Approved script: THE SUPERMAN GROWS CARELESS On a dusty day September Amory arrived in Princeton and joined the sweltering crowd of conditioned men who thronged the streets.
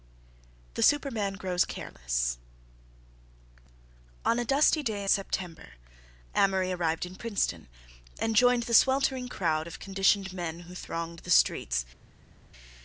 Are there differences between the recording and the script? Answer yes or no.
no